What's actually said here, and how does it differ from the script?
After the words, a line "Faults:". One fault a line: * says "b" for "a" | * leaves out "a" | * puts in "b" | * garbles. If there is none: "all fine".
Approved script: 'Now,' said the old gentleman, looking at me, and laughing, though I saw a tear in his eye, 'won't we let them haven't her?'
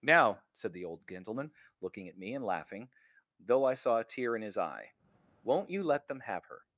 'Now,' said the old gentleman, looking at me, and laughing, though I saw a tear in his eye, 'won't you let them have her?'
Faults:
* says "you" for "we"
* says "have" for "haven't"